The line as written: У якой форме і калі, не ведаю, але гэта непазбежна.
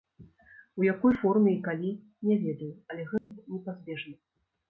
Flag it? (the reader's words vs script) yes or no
no